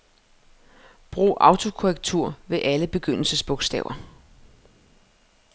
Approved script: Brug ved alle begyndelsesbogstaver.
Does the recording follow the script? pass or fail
fail